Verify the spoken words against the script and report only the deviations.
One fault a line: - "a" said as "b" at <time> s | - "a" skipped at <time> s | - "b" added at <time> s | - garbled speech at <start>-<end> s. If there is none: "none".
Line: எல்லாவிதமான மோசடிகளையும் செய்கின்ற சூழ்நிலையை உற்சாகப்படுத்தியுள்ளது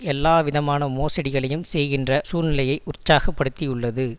none